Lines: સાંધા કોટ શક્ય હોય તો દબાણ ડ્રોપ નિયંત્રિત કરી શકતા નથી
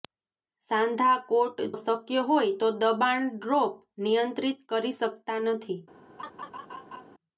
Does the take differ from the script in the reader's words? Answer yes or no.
no